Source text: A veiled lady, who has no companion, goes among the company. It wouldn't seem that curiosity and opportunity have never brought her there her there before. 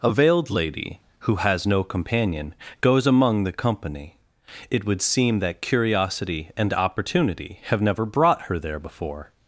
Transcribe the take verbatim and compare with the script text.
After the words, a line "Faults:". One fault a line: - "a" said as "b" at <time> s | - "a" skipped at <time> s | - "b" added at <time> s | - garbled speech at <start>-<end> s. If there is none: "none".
A veiled lady, who has no companion, goes among the company. It would seem that curiosity and opportunity have never brought her there before.
Faults:
- "wouldn't" said as "would" at 4.8 s
- "her there" skipped at 8.8 s